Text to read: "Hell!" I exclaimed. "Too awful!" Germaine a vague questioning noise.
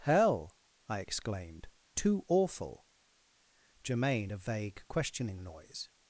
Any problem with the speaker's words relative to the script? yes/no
no